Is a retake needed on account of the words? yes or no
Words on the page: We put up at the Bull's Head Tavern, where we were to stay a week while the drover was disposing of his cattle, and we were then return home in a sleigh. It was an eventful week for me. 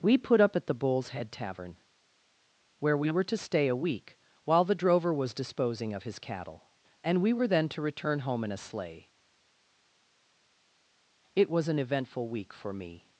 yes